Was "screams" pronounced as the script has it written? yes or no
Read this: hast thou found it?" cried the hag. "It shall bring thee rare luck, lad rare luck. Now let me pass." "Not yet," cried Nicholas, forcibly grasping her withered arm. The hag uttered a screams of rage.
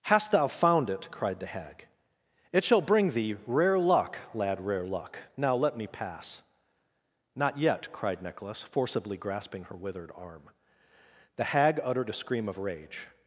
no